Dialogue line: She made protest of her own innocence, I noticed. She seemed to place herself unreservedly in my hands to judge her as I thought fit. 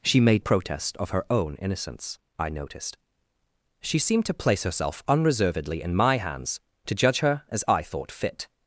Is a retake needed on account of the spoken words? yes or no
no